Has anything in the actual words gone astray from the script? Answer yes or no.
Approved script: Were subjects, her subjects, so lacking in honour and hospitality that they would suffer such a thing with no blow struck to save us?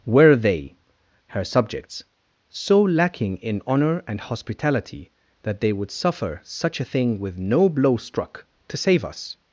yes